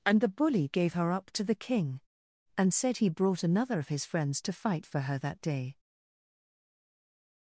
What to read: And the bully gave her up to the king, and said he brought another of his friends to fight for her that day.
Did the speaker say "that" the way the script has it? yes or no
yes